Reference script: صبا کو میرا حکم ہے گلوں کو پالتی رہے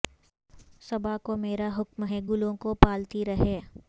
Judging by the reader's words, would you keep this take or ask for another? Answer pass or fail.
pass